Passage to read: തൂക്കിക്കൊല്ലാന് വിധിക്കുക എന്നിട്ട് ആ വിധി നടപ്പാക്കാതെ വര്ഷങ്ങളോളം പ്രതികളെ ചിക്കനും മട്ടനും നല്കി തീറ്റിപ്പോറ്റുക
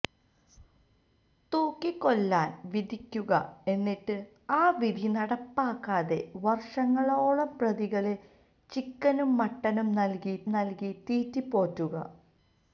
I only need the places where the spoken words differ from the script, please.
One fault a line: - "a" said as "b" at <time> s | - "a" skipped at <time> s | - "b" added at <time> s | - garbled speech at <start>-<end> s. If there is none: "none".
- "നല്കി" added at 10.5 s